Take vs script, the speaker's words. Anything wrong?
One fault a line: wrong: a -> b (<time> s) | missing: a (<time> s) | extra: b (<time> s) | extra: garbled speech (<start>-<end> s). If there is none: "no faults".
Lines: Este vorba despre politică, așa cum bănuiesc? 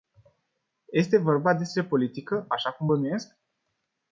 no faults